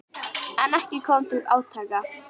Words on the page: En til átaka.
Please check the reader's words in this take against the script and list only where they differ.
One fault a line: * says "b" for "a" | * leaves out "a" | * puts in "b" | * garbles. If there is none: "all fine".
* puts in "ekki kom"